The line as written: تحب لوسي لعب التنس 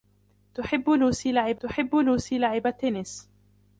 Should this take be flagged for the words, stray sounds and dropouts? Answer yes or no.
yes